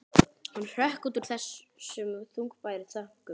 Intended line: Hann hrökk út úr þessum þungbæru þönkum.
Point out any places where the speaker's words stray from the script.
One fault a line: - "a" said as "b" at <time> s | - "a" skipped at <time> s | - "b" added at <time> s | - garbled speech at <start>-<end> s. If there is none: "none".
none